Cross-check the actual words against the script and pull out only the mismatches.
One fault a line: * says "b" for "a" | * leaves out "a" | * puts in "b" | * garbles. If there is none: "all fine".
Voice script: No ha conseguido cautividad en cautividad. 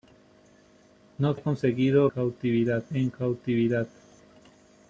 all fine